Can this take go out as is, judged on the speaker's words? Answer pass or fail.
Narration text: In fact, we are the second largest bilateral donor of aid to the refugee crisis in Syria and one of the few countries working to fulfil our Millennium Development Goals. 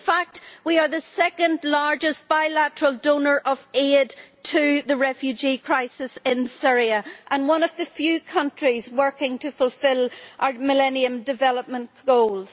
pass